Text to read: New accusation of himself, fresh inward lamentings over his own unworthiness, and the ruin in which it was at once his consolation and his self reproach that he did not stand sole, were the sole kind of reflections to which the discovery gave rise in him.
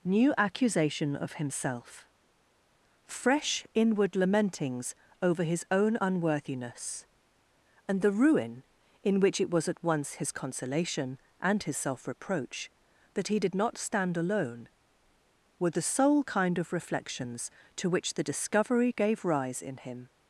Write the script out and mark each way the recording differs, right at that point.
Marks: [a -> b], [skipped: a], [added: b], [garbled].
New accusation of himself, fresh inward lamentings over his own unworthiness, and the ruin in which it was at once his consolation and his self reproach that he did not stand [sole, -> alone] were the sole kind of reflections to which the discovery gave rise in him.